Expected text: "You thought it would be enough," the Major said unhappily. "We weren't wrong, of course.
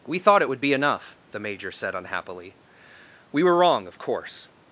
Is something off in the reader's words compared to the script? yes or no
yes